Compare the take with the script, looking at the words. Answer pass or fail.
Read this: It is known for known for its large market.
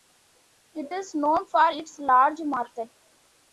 fail